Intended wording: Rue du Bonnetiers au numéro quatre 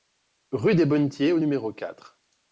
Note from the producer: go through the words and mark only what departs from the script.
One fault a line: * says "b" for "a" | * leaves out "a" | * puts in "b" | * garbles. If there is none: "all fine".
* says "des" for "du"